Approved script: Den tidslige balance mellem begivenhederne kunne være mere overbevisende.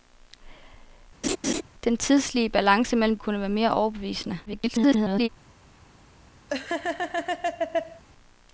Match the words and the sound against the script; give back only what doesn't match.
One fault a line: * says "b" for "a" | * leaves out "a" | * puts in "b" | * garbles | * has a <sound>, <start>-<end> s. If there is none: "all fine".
* has a laugh, 1.2-1.6 s
* leaves out "begivenhederne"
* garbles
* has a laugh, 6.5-8.0 s